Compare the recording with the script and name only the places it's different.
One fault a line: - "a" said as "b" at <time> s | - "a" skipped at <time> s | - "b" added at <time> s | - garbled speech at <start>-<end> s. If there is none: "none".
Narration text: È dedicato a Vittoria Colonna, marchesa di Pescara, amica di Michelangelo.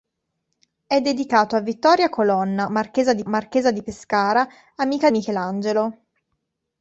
- "marchesa di" added at 3.3 s
- "di" skipped at 5.1 s